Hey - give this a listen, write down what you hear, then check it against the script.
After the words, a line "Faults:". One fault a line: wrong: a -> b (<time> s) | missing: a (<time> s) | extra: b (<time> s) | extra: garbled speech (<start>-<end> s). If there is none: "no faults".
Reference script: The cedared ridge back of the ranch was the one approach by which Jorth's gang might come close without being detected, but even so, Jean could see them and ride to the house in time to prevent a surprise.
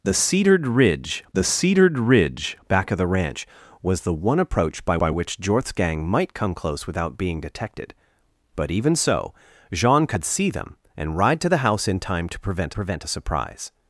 The cedared ridge the cedared ridge back of the ranch was the one approach by by which Jorth's gang might come close without being detected, but even so, Jean could see them and ride to the house in time to prevent prevent a surprise.
Faults:
extra: the cedared ridge (1.3 s)
extra: by (5.0 s)
extra: prevent (12.7 s)